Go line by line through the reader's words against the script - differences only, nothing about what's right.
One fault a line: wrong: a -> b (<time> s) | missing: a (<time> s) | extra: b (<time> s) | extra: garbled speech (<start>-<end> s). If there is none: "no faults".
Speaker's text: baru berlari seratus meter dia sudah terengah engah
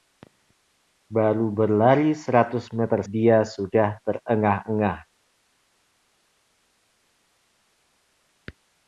no faults